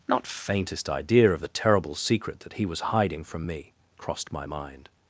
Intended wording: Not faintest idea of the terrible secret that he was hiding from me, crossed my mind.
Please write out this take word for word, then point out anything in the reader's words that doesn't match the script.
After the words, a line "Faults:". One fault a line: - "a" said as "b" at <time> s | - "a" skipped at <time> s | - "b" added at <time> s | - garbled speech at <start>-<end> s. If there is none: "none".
Not faintest idea of the terrible secret that he was hiding from me, crossed my mind.
Faults:
none